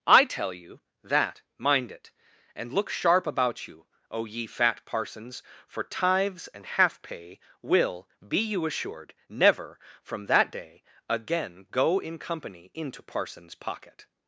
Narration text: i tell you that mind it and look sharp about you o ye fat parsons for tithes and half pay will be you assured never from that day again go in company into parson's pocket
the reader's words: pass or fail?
pass